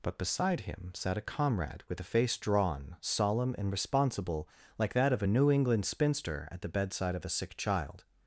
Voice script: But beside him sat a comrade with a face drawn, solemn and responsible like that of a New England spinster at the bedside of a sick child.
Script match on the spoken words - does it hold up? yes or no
yes